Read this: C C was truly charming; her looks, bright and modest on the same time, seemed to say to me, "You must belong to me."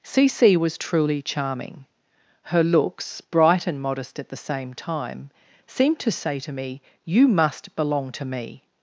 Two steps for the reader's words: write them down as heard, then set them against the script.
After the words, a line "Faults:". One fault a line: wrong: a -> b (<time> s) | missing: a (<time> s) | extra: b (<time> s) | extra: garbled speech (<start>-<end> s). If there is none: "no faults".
C C was truly charming; her looks, bright and modest at the same time, seemed to say to me, "You must belong to me."
Faults:
wrong: on -> at (4.2 s)